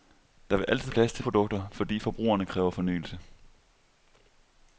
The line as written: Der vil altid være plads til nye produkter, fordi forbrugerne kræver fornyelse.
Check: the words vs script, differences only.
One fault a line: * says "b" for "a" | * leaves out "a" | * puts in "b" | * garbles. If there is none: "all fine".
* leaves out "være"
* leaves out "nye"